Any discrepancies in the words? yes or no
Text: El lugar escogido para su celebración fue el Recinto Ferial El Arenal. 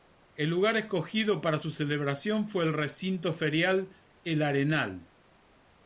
no